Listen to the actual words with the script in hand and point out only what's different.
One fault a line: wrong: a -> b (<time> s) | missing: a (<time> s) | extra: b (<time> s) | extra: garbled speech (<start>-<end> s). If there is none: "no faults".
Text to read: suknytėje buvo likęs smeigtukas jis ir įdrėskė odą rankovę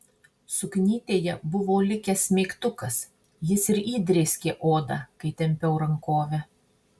extra: kai tempiau (5.2 s)